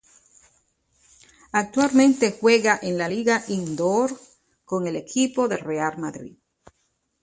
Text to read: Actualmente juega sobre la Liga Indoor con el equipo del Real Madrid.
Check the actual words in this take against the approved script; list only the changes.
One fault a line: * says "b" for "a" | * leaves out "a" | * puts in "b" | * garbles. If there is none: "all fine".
* says "en" for "sobre"